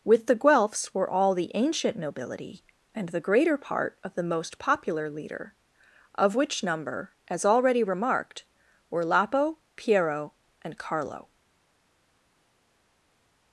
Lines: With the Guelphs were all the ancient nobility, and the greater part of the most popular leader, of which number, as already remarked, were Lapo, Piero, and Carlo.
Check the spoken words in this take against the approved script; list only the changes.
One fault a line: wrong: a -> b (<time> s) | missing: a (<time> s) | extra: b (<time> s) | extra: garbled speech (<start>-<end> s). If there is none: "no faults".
no faults